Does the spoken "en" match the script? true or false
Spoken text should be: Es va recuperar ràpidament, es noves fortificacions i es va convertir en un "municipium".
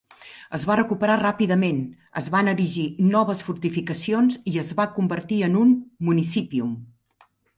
true